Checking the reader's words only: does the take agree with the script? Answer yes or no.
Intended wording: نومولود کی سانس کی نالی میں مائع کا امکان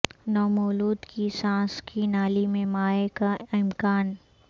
yes